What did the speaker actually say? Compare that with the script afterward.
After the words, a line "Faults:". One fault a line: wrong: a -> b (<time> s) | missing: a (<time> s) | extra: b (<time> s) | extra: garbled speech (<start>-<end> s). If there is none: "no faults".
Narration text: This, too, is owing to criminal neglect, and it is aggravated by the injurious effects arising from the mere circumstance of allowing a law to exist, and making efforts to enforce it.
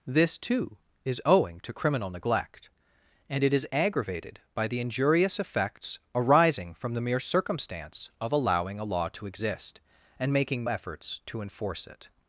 This, too, is owing to criminal neglect, and it is aggravated by the injurious effects arising from the mere circumstance of allowing a law to exist, and making efforts to enforce it.
Faults:
no faults